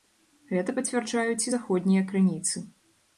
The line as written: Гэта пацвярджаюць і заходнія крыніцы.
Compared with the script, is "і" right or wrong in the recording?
right